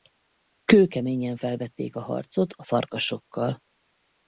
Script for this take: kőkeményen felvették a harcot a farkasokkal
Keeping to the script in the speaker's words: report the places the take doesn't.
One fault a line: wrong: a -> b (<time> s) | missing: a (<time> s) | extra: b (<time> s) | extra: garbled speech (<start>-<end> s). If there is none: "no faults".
no faults